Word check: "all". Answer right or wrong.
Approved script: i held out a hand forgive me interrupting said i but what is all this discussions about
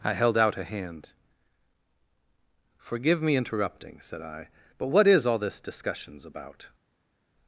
right